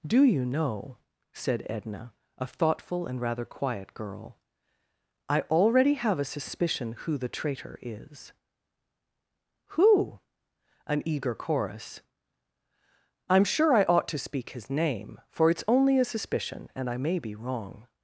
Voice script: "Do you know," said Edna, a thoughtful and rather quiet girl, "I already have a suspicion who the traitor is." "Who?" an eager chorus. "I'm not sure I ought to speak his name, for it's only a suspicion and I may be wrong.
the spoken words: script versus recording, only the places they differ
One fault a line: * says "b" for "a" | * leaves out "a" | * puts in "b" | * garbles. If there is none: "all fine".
* leaves out "not"